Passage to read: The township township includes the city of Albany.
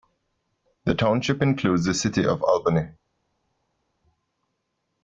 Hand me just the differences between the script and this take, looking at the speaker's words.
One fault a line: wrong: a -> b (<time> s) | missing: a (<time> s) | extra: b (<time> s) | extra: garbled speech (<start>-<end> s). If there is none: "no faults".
missing: township (1.4 s)